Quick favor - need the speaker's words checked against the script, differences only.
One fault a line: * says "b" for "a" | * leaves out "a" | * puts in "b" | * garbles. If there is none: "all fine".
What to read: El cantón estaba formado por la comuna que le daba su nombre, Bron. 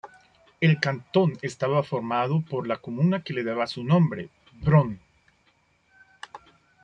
all fine